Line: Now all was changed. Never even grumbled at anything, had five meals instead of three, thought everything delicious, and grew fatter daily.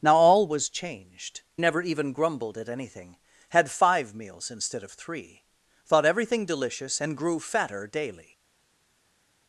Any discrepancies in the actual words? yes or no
no